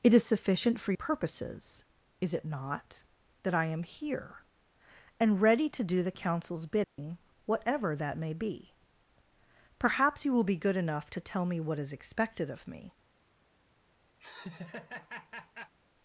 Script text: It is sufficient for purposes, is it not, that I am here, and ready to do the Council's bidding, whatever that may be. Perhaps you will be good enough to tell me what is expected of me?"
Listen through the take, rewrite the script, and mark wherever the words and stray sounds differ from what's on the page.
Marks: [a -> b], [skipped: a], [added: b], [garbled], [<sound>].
It is sufficient for purposes, is it not, that I am here, and ready to do the Council's bidding, [dropout] whatever that may be. Perhaps you will be good enough to tell me what is expected of me?" [laugh]